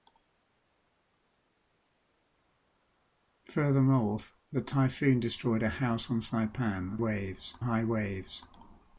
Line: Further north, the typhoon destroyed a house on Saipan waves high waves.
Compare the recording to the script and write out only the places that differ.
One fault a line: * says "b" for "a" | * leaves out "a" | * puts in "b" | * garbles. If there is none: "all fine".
all fine